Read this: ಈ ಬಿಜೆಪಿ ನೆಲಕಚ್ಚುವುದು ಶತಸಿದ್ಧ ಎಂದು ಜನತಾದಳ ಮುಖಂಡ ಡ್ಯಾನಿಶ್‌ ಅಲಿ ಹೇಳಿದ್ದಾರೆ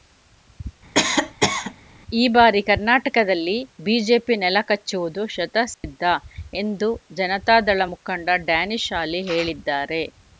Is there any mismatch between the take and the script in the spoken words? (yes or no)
yes